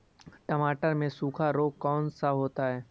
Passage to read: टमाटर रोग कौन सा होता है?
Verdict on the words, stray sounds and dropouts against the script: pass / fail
fail